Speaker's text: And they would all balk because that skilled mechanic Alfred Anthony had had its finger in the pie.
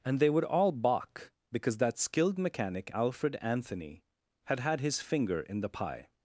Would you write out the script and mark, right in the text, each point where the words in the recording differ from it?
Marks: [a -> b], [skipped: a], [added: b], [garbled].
And they would all balk because that skilled mechanic Alfred Anthony had had [its -> his] finger in the pie.